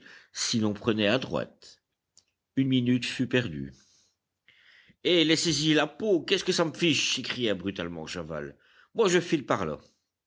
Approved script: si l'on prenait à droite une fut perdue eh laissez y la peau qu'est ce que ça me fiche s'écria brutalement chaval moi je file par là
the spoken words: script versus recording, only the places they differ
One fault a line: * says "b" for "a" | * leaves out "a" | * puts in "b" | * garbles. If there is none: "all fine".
* puts in "minute"